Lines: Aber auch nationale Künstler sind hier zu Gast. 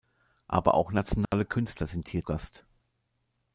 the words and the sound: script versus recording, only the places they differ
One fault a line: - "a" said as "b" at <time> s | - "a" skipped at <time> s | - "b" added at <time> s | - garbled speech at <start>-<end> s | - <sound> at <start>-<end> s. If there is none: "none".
- dropout at 1.3-1.3 s
- "zu" skipped at 2.2 s